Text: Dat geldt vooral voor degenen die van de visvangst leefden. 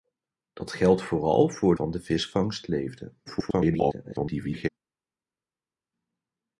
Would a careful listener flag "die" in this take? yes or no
yes